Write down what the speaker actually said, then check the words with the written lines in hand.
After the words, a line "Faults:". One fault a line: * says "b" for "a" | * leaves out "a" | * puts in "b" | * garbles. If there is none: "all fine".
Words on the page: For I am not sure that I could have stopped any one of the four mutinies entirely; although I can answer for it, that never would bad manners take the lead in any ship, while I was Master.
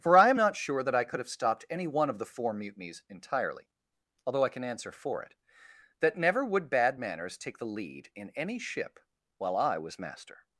For I am not sure that I could have stopped any one of the four mutinies entirely; although I can answer for it, that never would bad manners take the lead in any ship, while I was Master.
Faults:
all fine